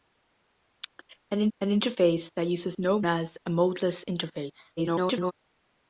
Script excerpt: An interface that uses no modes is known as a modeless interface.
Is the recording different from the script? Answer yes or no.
yes